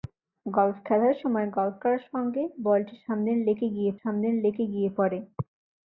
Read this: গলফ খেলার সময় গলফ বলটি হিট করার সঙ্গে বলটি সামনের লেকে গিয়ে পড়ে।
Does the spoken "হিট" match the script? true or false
false